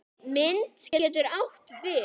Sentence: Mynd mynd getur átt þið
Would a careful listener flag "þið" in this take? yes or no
yes